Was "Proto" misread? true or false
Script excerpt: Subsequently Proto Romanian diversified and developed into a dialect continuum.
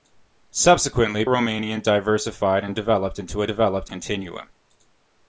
true